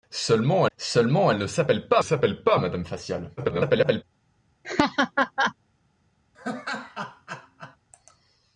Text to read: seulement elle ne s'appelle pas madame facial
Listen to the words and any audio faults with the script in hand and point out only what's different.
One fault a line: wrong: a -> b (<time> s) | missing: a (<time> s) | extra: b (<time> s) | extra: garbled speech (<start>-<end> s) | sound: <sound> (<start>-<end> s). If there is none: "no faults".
extra: seulement (0.8 s)
extra: s'appelle pas (2.0 s)
extra: garbled speech (3.4-4.0 s)
sound: laugh (4.6-5.5 s)
sound: laugh (6.3-7.8 s)